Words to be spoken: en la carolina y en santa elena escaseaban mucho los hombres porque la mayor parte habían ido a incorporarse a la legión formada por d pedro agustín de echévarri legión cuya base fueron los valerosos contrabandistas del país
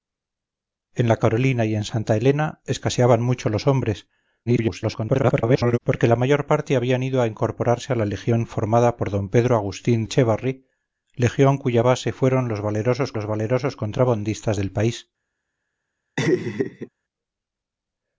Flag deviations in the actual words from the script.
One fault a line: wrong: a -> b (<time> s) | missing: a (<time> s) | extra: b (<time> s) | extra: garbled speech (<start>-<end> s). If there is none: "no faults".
extra: garbled speech (4.5-5.8 s)
missing: de (10.0 s)
extra: los valerosos (13.1 s)